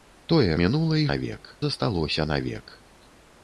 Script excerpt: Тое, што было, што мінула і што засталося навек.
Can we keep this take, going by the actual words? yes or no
no